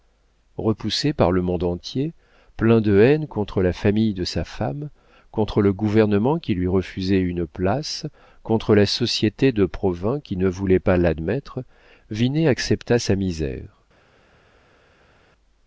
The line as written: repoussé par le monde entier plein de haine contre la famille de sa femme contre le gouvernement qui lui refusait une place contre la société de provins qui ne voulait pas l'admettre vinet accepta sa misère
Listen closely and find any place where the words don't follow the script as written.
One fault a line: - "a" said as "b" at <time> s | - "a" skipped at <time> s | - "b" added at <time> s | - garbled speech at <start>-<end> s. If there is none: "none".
none